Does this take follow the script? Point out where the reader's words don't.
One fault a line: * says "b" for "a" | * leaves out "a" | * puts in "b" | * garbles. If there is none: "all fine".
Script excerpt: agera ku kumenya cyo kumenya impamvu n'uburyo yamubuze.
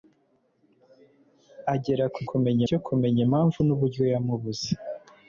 all fine